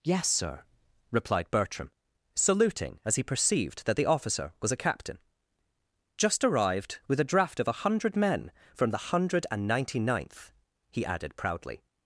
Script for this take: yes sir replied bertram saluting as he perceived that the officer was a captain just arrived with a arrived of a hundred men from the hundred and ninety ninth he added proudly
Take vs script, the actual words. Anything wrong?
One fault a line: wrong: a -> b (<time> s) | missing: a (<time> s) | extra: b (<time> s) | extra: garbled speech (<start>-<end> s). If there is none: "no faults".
wrong: arrived -> draft (7.2 s)